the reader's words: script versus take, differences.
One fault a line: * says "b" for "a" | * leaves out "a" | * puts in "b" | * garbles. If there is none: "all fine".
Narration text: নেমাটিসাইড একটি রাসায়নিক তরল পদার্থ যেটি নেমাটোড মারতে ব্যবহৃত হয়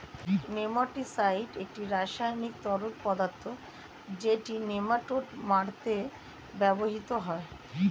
all fine